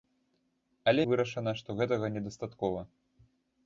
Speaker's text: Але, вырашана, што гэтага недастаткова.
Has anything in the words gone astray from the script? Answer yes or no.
no